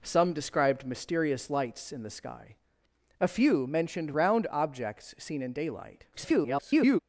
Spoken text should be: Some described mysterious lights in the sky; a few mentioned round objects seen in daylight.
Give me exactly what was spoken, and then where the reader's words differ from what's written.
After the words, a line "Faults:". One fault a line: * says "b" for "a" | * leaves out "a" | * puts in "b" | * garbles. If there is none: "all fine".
Some described mysterious lights in the sky; a few mentioned round objects seen in daylight. [garbled]
Faults:
* garbles